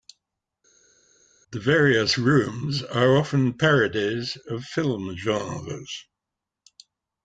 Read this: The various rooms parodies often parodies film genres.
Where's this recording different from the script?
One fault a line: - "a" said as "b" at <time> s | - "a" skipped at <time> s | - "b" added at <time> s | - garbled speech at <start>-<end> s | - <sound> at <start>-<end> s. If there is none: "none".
- "parodies" said as "are" at 2.8 s
- "of" added at 4.5 s